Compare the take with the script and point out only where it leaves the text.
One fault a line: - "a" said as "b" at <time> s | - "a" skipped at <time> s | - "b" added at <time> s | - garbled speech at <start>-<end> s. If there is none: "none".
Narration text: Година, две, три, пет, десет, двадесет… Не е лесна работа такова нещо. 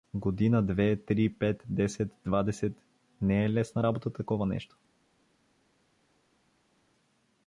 none